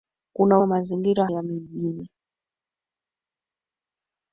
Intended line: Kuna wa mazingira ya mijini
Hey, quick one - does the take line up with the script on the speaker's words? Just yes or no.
yes